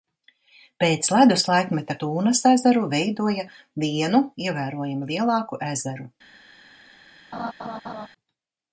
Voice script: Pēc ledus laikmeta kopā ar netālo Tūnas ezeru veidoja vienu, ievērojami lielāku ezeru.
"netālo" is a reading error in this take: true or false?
true